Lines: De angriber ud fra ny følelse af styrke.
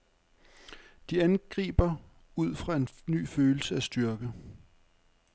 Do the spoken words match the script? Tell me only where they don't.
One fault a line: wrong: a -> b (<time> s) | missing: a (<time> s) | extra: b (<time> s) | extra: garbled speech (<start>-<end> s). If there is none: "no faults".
extra: en (2.8 s)